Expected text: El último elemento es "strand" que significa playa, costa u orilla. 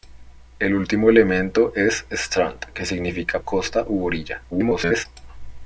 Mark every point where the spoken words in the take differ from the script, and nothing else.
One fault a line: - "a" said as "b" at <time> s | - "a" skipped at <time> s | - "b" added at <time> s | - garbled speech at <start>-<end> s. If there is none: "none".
- "playa" skipped at 3.4 s
- garbled speech at 4.5-5.1 s